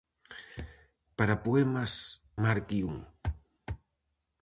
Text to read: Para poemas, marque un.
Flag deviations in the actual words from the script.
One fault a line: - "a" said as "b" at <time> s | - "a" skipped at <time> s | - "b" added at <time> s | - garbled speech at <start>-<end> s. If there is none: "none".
none